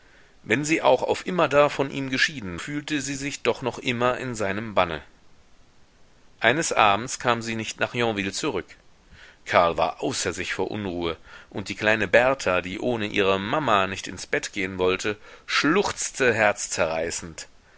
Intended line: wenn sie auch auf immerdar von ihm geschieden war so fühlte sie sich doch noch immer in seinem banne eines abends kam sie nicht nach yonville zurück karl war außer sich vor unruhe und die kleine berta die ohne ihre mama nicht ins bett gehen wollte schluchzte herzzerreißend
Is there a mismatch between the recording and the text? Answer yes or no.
yes